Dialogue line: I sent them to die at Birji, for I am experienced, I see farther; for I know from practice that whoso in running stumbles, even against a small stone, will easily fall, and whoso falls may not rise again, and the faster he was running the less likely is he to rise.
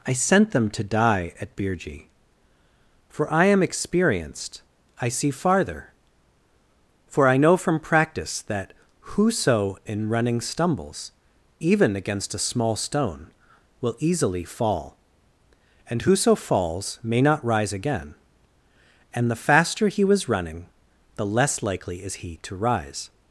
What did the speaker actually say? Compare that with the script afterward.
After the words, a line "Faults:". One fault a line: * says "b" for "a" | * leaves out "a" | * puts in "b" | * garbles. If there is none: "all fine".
I sent them to die at Birji, for I am experienced, I see farther; for I know from practice that whoso in running stumbles, even against a small stone, will easily fall, and whoso falls may not rise again, and the faster he was running the less likely is he to rise.
Faults:
all fine